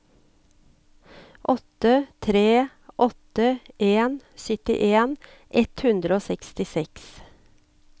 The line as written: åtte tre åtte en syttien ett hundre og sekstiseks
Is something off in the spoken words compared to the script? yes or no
no